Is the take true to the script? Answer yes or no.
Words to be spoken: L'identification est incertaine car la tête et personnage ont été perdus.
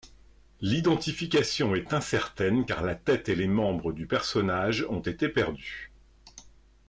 no